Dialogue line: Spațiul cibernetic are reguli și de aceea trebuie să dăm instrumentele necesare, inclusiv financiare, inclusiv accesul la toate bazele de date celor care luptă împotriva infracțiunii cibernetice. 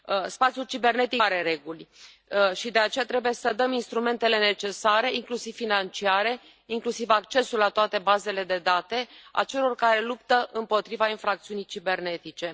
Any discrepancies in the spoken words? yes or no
no